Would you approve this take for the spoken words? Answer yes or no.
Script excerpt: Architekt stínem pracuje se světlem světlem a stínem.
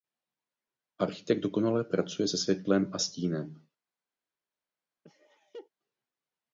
no